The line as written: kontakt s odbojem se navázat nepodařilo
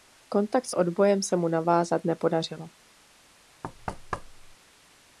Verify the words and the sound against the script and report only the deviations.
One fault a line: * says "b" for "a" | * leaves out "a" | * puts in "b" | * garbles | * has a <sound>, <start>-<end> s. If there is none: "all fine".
* puts in "mu"
* has a thud, 3.6-4.6 s